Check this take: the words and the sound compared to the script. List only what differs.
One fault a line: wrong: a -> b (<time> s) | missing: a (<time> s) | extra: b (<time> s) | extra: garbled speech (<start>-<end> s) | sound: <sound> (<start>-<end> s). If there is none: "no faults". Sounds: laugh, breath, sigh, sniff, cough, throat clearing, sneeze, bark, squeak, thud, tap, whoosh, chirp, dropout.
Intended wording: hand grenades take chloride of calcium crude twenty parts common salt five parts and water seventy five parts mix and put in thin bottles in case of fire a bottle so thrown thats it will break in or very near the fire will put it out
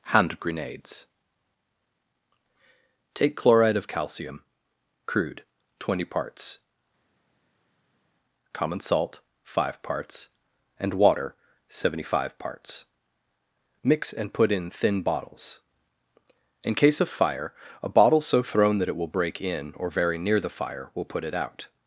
wrong: thats -> that (18.8 s)